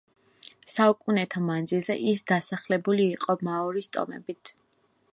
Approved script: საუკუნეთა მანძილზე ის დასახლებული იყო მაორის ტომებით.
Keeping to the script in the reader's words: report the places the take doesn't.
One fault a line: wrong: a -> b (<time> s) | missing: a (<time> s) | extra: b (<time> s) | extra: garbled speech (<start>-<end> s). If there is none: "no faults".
no faults